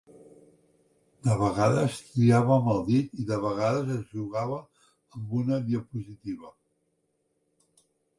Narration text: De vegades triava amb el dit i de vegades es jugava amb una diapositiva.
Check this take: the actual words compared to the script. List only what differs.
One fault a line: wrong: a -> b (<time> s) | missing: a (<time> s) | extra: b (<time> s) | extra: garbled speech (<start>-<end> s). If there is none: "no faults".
no faults